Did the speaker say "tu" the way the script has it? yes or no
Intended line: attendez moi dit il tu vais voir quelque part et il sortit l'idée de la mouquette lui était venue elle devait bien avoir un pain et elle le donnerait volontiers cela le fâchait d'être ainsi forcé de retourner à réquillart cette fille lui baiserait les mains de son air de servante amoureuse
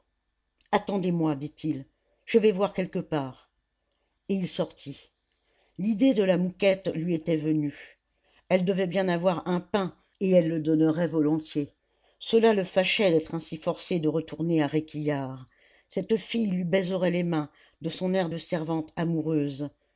no